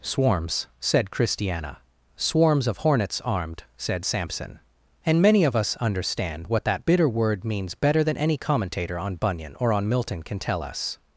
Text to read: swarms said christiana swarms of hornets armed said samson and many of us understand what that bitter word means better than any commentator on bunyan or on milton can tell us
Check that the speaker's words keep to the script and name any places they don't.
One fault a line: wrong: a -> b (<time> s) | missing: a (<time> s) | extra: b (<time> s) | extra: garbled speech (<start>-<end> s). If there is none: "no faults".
no faults